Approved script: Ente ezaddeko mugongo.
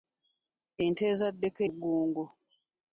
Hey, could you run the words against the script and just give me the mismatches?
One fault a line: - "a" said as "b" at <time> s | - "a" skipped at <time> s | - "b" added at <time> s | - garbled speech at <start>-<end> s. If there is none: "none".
none